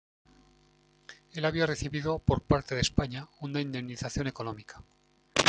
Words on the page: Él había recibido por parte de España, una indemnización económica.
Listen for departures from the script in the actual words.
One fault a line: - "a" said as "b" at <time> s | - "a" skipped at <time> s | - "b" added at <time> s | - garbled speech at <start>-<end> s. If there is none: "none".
none